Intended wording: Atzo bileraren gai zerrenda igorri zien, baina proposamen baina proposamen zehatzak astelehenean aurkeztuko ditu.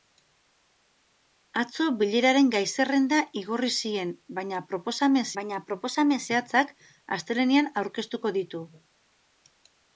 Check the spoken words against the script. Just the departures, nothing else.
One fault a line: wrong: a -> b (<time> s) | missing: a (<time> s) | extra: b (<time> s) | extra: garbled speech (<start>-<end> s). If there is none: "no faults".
no faults